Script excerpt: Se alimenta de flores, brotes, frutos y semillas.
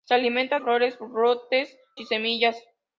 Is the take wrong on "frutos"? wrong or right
wrong